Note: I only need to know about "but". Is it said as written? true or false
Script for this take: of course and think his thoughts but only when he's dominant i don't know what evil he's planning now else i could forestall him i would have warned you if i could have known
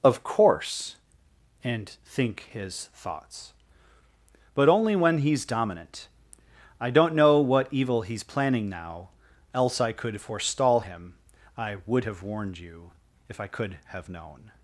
true